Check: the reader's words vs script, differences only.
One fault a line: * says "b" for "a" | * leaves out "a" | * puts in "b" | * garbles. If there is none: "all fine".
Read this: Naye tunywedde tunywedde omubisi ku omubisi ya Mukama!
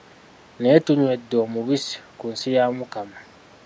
* leaves out "tunywedde"
* says "nsi" for "omubisi"